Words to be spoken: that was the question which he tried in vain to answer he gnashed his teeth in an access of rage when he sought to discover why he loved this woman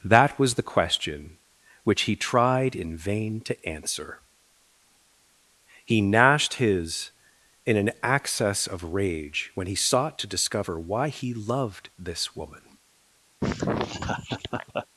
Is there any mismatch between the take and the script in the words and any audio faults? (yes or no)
yes